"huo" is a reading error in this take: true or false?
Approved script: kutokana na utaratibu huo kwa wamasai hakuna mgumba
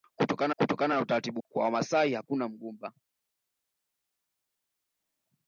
true